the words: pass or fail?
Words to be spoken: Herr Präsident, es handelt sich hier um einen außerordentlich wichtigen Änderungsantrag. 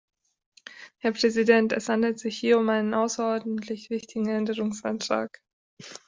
pass